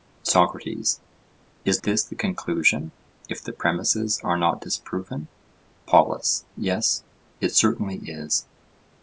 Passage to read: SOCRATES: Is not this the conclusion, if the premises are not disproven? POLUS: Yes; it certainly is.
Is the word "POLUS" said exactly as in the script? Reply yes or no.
yes